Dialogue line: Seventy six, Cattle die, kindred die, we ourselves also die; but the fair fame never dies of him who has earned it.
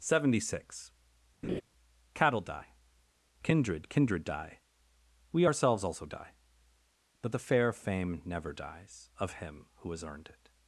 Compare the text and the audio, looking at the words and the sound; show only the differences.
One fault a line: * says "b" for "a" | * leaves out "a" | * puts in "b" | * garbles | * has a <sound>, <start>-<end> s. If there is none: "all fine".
* has a laugh, 1.4-1.6 s
* puts in "kindred"